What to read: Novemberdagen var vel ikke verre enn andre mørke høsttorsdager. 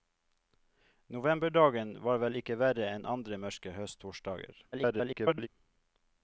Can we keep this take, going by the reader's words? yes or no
no